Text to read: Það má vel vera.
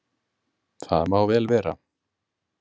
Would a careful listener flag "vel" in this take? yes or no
no